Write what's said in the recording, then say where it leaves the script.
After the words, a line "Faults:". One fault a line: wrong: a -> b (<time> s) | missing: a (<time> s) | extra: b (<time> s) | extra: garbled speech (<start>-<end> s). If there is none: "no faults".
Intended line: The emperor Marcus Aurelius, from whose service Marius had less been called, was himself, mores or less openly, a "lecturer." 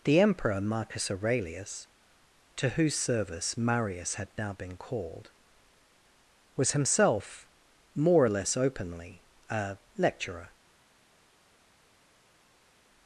The emperor Marcus Aurelius, to whose service Marius had now been called, was himself, more or less openly, a "lecturer."
Faults:
wrong: from -> to (2.5 s)
wrong: less -> now (4.4 s)
wrong: mores -> more (7.9 s)